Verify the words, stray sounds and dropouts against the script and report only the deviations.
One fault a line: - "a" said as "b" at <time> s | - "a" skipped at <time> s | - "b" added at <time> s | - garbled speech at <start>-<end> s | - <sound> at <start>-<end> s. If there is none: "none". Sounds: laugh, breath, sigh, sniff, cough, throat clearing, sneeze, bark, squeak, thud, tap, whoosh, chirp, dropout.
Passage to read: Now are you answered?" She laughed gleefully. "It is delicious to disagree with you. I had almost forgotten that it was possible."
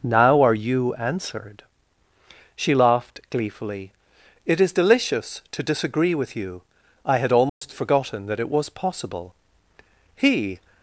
- dropout at 7.5-7.6 s
- "He" added at 10.1 s